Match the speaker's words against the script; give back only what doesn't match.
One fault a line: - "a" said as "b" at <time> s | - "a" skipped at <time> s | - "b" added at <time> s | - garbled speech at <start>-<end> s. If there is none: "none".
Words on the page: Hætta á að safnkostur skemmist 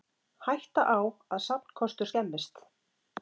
none